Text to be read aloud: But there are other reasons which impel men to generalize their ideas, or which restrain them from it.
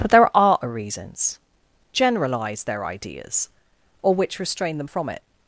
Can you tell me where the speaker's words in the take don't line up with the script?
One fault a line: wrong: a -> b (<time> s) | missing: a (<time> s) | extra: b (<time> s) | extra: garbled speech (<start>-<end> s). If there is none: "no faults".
missing: which impel men to (1.4 s)